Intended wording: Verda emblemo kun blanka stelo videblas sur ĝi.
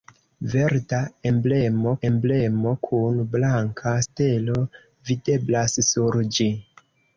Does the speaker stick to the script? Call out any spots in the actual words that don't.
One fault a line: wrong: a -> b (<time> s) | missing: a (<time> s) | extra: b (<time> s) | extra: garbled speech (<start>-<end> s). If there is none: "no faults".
extra: emblemo (2.1 s)